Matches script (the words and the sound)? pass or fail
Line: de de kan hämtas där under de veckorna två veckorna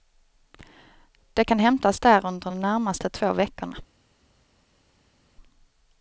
fail